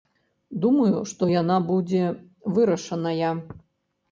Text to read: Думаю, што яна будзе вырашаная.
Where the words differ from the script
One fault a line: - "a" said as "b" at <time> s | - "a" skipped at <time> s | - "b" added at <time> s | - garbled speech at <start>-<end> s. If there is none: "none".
none